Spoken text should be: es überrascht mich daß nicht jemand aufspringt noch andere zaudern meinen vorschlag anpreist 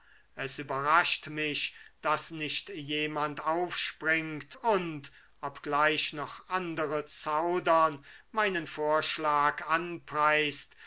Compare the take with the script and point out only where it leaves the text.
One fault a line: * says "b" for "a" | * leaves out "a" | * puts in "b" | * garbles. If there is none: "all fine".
* puts in "und obgleich"